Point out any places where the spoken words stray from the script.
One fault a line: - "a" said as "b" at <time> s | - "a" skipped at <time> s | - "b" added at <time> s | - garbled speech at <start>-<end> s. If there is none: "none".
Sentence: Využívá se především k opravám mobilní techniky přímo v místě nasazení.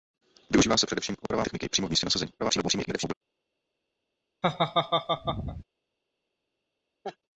- "mobilní" skipped at 1.5 s
- garbled speech at 2.4-3.1 s